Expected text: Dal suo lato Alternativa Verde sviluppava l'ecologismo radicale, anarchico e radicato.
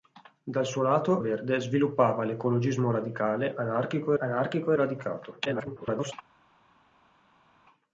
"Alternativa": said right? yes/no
no